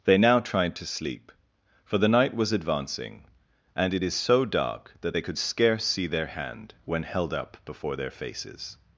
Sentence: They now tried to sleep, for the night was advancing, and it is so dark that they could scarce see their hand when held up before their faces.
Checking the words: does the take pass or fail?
pass